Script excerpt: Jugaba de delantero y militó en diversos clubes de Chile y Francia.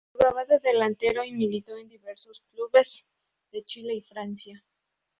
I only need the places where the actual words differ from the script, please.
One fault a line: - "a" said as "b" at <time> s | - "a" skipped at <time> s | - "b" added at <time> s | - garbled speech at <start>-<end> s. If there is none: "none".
none